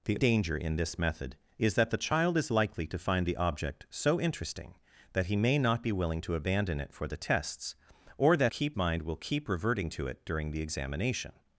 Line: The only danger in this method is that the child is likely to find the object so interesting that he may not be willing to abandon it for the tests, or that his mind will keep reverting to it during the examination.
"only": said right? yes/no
no